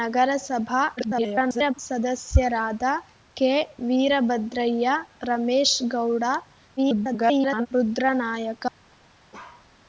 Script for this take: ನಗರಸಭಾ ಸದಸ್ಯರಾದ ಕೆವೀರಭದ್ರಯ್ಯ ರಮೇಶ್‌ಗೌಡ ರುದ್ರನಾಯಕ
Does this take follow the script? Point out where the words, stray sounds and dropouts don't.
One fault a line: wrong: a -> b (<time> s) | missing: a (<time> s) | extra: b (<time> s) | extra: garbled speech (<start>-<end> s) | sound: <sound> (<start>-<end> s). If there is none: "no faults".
extra: garbled speech (1.0-1.7 s)
extra: garbled speech (6.8-7.7 s)
sound: bark (9.3-9.7 s)